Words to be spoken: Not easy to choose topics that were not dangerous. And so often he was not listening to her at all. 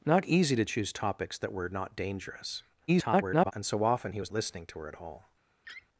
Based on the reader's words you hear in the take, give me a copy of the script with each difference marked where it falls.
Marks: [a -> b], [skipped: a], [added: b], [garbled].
Not easy to choose topics that were not dangerous. [garbled] And so often he was [skipped: not] listening to her at all.